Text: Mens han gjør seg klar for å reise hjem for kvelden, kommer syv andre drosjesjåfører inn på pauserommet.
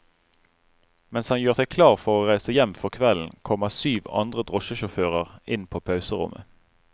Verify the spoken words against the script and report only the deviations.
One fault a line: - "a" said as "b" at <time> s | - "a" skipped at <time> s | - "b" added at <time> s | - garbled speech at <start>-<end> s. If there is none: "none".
none